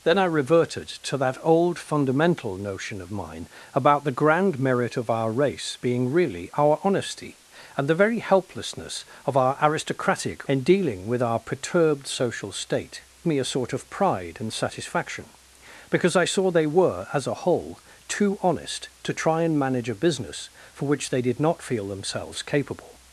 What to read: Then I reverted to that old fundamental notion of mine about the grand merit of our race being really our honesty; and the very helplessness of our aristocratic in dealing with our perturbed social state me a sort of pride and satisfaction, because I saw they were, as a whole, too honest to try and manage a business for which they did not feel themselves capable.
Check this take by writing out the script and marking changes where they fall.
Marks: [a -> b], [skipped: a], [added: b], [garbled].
Then I reverted to that old fundamental notion of mine about the grand merit of our race being really our honesty; and the very helplessness of our aristocratic in dealing with our perturbed social state me a sort of pride and satisfaction, because I saw they were, as a whole, too honest to try and manage a business for which they did not feel themselves capable.